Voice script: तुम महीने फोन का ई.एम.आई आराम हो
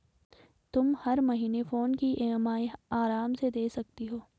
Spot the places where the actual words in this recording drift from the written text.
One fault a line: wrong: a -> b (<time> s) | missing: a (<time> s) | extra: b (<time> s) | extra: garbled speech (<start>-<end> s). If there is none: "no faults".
extra: हर (1.0 s)
wrong: का -> की (1.9 s)
extra: से दे सकती (3.3 s)